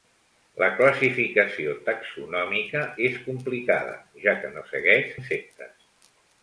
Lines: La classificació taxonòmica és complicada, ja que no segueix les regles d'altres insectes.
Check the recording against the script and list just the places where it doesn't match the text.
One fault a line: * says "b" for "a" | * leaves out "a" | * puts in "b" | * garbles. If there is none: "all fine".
* leaves out "les regles d'altres"